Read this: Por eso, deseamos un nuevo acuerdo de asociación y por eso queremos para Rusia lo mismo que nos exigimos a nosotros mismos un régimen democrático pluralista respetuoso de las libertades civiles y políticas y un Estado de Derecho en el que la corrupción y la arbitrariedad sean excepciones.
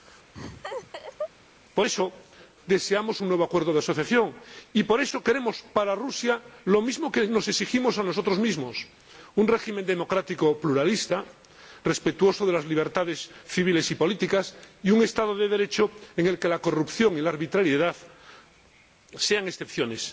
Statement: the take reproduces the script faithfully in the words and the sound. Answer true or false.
false